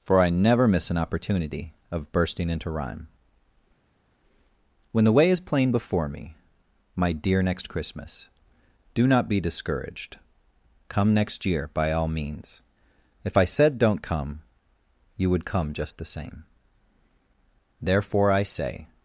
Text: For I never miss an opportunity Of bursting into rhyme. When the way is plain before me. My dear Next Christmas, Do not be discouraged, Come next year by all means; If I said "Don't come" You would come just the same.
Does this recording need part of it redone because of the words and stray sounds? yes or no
yes